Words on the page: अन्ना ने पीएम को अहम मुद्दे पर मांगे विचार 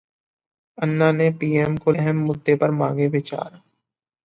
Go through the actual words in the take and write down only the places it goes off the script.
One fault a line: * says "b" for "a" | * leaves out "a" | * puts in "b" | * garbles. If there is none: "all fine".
all fine